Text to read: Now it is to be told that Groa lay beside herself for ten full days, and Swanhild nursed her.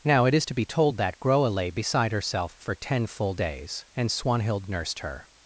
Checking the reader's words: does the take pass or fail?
pass